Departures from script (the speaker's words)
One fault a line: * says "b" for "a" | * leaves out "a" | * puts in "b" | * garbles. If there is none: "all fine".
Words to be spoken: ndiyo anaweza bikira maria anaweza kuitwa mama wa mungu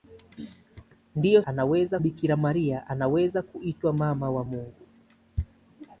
all fine